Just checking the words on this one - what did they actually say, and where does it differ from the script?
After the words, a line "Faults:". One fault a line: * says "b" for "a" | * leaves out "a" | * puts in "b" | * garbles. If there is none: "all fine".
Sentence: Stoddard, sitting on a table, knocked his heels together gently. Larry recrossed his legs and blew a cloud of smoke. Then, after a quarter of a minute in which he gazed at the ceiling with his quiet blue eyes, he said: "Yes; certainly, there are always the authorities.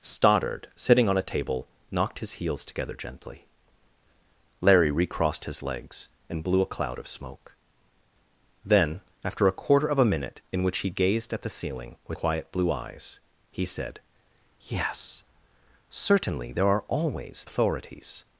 Stoddard, sitting on a table, knocked his heels together gently. Larry recrossed his legs and blew a cloud of smoke. Then, after a quarter of a minute in which he gazed at the ceiling with quiet blue eyes, he said: "Yes; certainly, there are always authorities.
Faults:
* leaves out "his"
* leaves out "the"